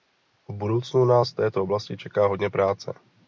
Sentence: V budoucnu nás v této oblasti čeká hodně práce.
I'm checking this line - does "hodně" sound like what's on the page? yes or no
yes